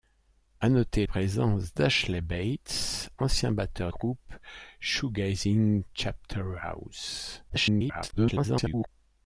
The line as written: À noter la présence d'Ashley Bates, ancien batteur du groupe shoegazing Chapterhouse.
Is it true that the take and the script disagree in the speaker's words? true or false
true